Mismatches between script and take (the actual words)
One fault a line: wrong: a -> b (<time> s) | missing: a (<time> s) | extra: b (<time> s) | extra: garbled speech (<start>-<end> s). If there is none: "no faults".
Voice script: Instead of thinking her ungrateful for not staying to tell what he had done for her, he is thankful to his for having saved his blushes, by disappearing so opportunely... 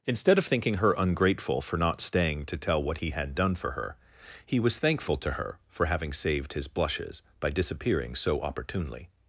wrong: is -> was (4.6 s)
wrong: his -> her (5.3 s)